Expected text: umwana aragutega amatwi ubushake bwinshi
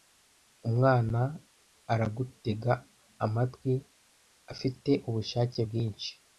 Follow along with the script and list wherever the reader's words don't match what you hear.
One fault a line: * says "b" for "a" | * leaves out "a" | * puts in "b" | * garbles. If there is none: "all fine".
* puts in "afite"